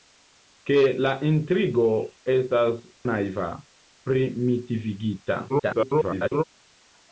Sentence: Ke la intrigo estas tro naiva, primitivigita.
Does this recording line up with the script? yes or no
no